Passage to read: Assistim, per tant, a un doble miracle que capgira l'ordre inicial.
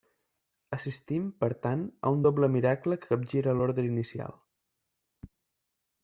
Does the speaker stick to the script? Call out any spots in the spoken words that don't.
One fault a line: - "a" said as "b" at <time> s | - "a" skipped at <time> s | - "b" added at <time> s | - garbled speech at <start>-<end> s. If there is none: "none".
none